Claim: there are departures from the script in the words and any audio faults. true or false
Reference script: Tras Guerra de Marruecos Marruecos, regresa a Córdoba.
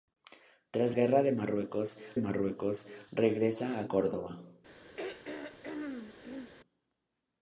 true